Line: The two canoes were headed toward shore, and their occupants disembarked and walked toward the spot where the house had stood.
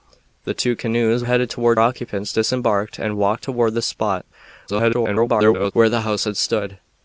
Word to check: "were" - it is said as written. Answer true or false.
false